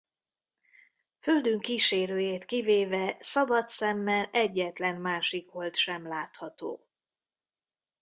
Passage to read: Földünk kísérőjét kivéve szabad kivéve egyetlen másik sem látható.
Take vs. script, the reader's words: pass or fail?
fail